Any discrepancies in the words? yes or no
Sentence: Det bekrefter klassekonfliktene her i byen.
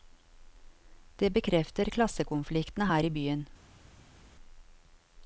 no